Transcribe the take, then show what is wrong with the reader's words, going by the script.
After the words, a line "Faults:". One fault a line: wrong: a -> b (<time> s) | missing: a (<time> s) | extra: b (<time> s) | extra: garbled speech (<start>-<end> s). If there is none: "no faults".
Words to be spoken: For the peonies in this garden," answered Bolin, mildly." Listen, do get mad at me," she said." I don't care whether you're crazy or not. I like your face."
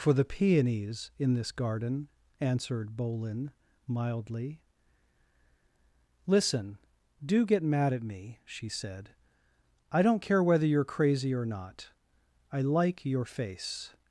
For the peonies in this garden," answered Bolin, mildly." Listen, do get mad at me," she said." I don't care whether you're crazy or not. I like your face."
Faults:
no faults